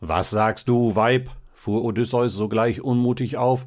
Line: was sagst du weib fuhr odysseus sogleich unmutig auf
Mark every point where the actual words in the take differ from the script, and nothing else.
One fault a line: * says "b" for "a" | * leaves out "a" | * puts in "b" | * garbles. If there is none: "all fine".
all fine